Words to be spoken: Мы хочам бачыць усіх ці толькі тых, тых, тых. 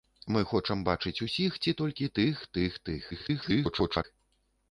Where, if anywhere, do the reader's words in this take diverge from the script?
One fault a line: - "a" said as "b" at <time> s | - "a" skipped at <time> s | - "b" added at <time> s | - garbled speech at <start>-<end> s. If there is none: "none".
- garbled speech at 3.1-4.0 s